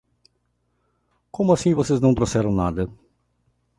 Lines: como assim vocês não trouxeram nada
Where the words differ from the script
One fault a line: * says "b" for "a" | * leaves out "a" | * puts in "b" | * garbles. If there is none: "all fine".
all fine